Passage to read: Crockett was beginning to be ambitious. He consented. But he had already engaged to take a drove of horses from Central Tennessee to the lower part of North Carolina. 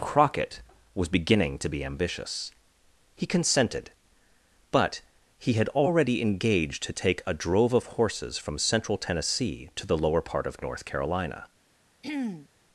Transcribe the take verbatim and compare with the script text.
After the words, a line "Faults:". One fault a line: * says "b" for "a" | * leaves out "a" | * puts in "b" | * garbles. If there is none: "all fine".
Crockett was beginning to be ambitious. He consented. But he had already engaged to take a drove of horses from Central Tennessee to the lower part of North Carolina.
Faults:
all fine